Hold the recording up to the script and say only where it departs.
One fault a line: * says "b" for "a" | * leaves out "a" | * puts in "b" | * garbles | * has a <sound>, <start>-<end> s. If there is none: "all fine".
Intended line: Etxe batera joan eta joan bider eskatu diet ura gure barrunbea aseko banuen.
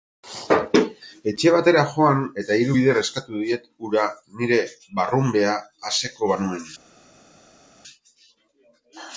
* says "hiru" for "joan"
* says "nire" for "gure"